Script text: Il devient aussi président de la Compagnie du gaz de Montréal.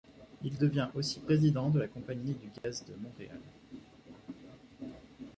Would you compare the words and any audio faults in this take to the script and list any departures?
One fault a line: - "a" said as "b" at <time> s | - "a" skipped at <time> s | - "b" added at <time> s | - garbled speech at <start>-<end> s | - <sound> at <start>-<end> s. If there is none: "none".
- dropout at 2.6-2.6 s